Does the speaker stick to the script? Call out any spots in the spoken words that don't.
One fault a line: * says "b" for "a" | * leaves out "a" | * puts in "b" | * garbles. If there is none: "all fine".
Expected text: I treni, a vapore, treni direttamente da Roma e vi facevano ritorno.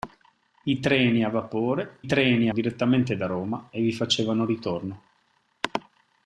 all fine